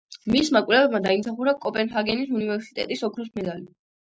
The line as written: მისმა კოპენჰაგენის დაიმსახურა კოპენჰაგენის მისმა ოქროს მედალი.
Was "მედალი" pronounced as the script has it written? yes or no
yes